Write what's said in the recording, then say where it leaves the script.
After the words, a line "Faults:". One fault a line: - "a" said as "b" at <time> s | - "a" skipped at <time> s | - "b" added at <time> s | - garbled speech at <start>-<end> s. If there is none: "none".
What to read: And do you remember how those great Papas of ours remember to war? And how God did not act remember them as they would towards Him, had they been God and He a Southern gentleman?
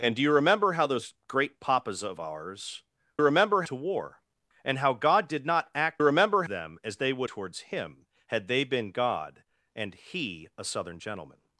And do you remember how those great Papas of ours remember to war? And how God did not act remember them as they would towards Him, had they been God and He a Southern gentleman?
Faults:
none